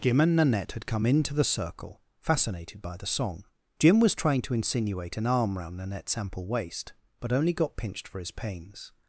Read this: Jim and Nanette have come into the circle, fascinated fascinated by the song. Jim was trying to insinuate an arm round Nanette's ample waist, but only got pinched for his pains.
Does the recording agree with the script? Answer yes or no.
no